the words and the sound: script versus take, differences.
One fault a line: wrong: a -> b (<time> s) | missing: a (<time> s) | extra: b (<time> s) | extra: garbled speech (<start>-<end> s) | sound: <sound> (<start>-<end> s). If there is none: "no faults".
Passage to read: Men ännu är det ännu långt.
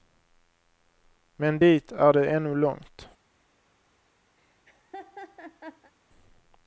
wrong: ännu -> dit (1.6 s)
sound: laugh (4.4-5.9 s)